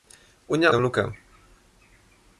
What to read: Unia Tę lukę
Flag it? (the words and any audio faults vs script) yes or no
no